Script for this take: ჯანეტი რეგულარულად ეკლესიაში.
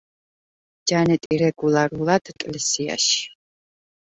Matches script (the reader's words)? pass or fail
pass